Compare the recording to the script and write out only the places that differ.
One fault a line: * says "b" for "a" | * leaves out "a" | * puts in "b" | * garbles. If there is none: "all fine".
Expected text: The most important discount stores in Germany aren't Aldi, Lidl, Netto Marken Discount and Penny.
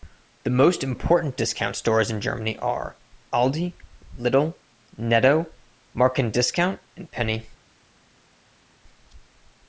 * says "are" for "aren't"